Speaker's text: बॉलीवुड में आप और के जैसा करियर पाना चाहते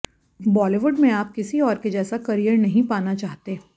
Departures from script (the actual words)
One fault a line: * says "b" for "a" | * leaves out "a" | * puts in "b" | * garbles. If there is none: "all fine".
* puts in "किसी"
* puts in "नहीं"